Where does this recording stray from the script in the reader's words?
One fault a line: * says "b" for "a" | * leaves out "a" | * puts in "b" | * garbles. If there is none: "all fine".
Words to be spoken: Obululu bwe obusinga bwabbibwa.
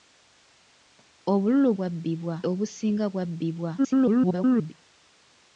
* says "bwabbibwa" for "bwe"
* garbles